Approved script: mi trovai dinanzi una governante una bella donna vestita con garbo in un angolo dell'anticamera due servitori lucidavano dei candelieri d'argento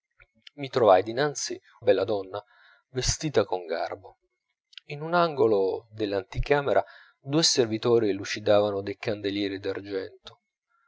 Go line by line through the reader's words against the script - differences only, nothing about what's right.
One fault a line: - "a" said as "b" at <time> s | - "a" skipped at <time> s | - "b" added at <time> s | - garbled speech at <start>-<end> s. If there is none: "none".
- "una governante una" skipped at 1.6 s